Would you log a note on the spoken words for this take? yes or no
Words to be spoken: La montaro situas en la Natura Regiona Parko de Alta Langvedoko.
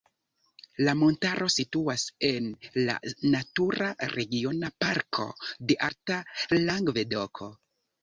no